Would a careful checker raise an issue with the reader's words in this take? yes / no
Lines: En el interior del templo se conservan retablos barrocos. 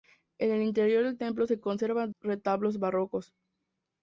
no